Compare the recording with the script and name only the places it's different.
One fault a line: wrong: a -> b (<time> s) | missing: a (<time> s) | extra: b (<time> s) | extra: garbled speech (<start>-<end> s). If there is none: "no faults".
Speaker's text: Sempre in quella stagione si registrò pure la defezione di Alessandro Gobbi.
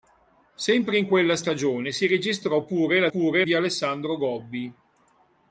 wrong: defezione -> pure (3.1 s)